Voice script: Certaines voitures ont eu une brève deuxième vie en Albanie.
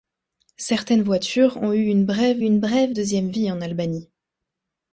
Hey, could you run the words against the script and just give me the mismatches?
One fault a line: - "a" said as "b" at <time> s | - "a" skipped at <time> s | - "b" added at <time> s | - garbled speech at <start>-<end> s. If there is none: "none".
- "une brève" added at 2.4 s